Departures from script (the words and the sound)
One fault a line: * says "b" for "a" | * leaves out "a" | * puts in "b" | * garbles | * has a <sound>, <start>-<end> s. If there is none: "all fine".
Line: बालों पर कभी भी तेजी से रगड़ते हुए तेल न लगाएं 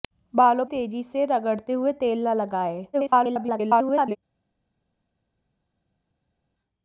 * leaves out "पर कभी भी"
* garbles